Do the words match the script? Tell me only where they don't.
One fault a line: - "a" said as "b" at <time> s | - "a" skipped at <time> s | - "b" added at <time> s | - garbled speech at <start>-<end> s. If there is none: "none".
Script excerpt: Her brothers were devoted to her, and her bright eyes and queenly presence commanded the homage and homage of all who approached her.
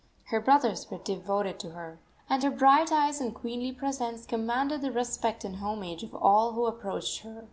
- "homage" said as "respect" at 4.9 s